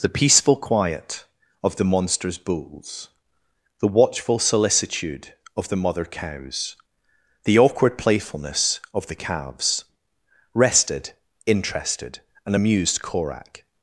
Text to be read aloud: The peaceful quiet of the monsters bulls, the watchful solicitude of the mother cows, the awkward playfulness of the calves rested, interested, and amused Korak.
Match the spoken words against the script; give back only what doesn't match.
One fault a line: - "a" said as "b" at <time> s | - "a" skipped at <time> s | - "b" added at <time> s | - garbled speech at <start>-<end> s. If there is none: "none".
none